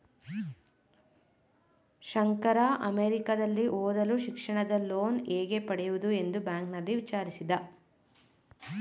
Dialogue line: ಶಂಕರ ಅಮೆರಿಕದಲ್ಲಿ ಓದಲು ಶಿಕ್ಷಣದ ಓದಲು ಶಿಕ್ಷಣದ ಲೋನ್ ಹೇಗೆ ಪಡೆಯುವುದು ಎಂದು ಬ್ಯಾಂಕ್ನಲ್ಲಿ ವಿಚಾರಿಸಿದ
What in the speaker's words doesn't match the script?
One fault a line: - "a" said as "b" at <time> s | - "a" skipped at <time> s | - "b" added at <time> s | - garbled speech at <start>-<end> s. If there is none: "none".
- "ಓದಲು ಶಿಕ್ಷಣದ" skipped at 4.8 s